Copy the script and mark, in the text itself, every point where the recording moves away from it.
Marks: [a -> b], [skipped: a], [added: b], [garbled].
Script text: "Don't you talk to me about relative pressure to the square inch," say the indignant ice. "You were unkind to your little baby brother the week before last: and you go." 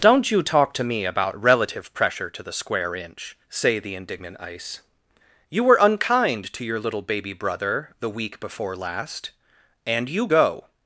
"Don't you talk to me about relative pressure to the square inch," say the indignant ice. "You were unkind to your little baby brother the week before last: and you go."